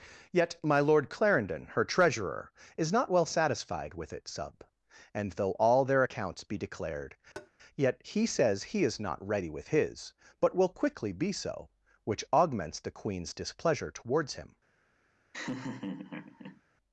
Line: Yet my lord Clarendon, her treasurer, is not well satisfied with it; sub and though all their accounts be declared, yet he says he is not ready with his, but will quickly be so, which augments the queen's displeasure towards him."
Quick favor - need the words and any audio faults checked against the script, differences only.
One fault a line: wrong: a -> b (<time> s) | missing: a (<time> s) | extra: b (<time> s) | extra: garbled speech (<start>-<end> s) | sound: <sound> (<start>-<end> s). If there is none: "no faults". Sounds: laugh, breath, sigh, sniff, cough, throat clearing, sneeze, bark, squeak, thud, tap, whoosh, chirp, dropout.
sound: tap (7.4-7.5 s)
sound: laugh (15.3-16.6 s)